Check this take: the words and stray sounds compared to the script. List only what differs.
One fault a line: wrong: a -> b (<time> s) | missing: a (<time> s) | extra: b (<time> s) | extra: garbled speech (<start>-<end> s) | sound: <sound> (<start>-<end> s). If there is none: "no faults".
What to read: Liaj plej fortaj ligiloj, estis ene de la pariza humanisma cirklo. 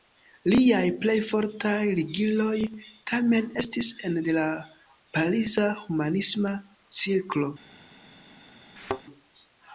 extra: tamen (3.1 s)
sound: thud (8.8-9.0 s)